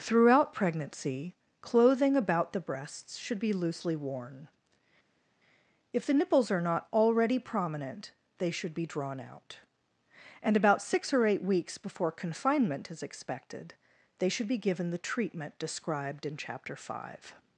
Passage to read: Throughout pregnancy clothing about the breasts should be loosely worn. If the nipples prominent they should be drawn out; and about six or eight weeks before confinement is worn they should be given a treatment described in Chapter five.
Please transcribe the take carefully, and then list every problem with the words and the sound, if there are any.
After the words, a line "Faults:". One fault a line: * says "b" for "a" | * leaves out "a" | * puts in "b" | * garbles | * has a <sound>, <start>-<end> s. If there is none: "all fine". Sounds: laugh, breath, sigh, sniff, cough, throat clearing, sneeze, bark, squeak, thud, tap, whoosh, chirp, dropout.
Throughout pregnancy clothing about the breasts should be loosely worn. If the nipples are not already prominent they should be drawn out; and about six or eight weeks before confinement is expected they should be given the treatment described in Chapter five.
Faults:
* puts in "are not already"
* says "expected" for "worn"
* says "the" for "a"